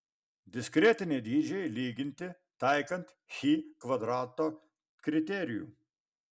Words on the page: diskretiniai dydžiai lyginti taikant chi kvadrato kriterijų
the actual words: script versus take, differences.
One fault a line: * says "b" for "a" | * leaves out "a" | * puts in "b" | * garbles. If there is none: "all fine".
all fine